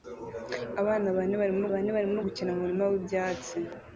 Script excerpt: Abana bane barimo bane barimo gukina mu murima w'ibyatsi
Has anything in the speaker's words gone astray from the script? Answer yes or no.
no